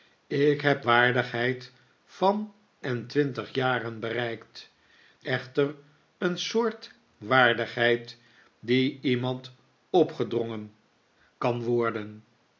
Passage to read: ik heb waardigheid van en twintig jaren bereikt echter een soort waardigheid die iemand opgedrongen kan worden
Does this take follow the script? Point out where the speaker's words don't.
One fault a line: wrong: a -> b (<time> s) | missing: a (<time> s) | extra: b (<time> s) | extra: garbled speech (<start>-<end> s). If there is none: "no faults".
no faults